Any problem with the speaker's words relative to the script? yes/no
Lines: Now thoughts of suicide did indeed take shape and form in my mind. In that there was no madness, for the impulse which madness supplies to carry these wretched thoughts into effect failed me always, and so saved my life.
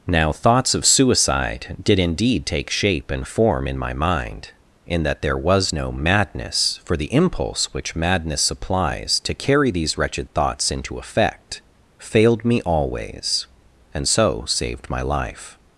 no